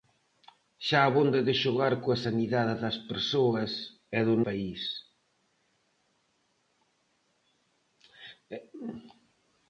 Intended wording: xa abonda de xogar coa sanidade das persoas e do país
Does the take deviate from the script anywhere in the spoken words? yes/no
no